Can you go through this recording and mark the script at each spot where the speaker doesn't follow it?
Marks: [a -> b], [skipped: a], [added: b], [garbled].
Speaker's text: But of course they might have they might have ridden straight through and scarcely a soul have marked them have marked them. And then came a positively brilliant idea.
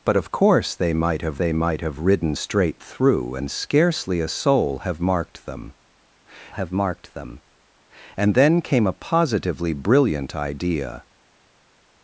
But of course they might have they might have ridden straight through and scarcely a soul have marked them have marked them. And then came a positively brilliant idea.